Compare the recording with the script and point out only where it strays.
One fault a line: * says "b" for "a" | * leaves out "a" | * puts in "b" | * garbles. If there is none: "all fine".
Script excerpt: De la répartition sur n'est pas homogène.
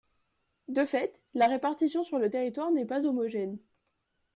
* puts in "fait"
* puts in "le territoire"